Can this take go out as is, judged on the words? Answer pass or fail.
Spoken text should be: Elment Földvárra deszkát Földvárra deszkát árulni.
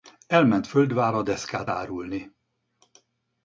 fail